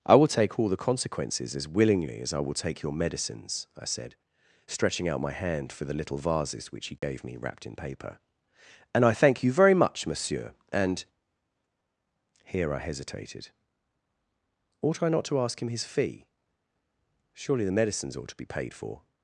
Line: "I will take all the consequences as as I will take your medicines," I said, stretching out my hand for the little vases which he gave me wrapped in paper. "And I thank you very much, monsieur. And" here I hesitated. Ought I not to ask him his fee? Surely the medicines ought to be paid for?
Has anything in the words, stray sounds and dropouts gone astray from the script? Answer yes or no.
yes